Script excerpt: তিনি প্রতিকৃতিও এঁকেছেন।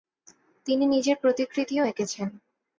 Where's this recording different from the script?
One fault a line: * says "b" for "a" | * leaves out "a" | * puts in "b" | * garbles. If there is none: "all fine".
* puts in "নিজের"